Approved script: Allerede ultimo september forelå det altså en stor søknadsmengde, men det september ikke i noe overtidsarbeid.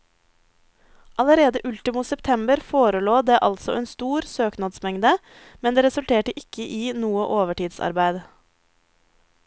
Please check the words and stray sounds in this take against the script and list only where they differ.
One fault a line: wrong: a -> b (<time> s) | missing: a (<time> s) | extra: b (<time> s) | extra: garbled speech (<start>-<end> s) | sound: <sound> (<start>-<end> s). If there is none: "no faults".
wrong: september -> resulterte (5.9 s)